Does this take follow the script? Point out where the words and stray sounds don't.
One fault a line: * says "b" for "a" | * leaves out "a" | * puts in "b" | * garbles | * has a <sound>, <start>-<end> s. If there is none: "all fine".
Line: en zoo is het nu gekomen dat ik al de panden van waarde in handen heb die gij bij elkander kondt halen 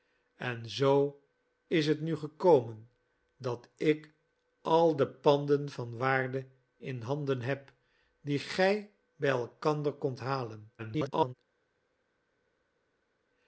* garbles